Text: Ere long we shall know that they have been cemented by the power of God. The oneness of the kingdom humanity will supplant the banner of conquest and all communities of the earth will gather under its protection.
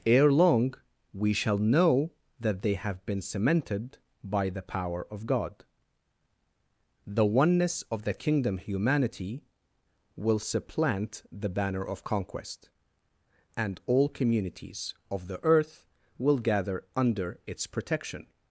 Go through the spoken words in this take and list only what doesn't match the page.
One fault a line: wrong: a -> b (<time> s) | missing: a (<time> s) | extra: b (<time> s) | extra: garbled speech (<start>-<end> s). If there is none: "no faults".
no faults